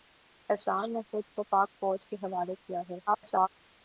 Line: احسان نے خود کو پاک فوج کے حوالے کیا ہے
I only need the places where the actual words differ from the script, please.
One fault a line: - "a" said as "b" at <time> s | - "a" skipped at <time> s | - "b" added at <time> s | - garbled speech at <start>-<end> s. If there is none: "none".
- garbled speech at 3.1-3.5 s